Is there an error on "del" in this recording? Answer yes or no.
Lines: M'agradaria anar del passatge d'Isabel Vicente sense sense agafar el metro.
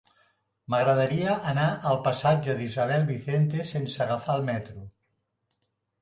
yes